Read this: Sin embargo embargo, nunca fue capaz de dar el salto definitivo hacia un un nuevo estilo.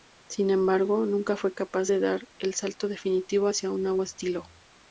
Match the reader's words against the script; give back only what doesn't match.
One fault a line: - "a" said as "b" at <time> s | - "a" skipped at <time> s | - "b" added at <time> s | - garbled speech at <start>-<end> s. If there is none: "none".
- "embargo" skipped at 1.1 s
- "un" skipped at 3.8 s